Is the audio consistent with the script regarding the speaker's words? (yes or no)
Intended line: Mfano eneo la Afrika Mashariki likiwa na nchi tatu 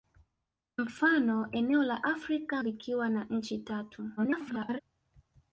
no